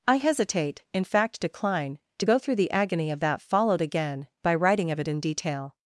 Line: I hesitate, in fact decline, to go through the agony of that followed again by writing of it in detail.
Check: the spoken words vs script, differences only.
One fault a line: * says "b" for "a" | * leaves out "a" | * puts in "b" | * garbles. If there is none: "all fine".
all fine